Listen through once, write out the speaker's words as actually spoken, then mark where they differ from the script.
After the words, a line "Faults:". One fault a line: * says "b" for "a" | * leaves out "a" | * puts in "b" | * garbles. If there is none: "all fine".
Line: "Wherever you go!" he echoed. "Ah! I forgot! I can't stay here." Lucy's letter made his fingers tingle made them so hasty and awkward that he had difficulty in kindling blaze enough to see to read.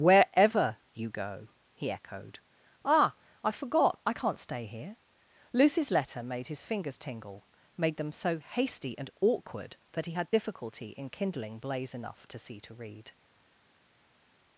"Wherever you go!" he echoed. "Ah! I forgot! I can't stay here." Lucy's letter made his fingers tingle made them so hasty and awkward that he had difficulty in kindling blaze enough to see to read.
Faults:
all fine